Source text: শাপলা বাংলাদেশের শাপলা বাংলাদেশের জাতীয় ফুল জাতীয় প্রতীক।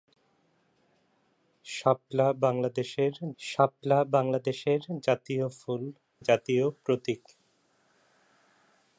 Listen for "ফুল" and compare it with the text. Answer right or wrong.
right